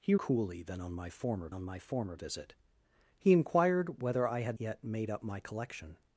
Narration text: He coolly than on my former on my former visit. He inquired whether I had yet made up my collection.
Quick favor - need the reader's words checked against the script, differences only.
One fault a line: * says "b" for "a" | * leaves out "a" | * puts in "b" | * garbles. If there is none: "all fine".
all fine